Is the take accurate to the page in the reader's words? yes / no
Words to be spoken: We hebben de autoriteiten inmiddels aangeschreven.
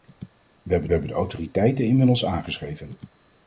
no